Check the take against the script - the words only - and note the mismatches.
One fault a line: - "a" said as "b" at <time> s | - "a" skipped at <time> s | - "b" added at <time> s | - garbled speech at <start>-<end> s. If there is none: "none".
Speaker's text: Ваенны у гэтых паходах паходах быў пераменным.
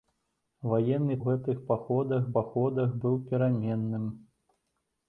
none